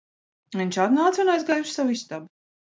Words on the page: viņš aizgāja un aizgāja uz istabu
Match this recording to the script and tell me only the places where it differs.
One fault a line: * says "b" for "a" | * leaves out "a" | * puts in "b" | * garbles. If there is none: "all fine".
* says "atnāca" for "aizgāja"
* puts in "savu"